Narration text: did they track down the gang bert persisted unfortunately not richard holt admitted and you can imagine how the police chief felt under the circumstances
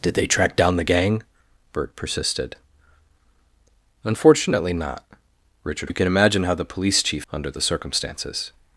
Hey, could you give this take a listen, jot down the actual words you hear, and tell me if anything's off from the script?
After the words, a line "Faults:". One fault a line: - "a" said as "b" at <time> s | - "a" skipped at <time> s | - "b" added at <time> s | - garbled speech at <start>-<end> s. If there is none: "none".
did they track down the gang bert persisted unfortunately not richard you can imagine how the police chief under the circumstances
Faults:
- "holt admitted and" skipped at 5.9 s
- "felt" skipped at 7.2 s